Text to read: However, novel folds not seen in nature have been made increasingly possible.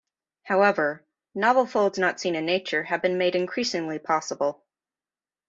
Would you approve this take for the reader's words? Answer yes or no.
yes